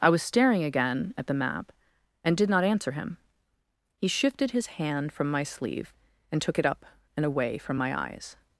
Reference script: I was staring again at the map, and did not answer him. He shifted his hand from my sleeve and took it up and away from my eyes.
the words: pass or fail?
pass